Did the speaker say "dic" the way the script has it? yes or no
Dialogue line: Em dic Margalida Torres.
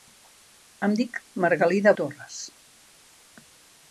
yes